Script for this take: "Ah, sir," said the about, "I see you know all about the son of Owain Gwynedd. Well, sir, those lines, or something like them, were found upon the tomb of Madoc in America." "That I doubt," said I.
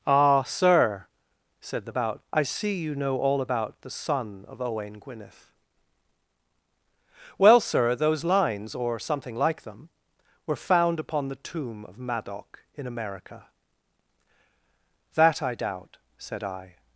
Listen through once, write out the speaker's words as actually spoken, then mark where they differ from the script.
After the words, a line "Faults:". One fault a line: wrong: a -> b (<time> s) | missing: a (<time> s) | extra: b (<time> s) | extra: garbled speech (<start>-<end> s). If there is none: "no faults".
"Ah, sir," said the about, "I see you know all about the son of Owain Gwynedd. Well, sir, those lines, or something like them, were found upon the tomb of Madoc in America." "That I doubt," said I.
Faults:
no faults